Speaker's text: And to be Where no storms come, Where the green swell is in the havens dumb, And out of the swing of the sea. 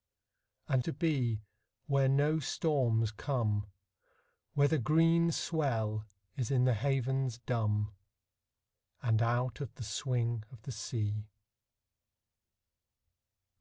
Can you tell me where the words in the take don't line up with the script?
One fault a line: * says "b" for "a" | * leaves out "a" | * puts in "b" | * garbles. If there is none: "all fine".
all fine